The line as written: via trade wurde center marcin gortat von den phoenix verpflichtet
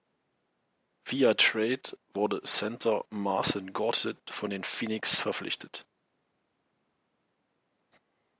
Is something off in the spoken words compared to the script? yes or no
no